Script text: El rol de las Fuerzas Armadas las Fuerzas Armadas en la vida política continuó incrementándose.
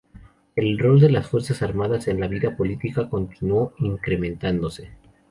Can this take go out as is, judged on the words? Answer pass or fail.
fail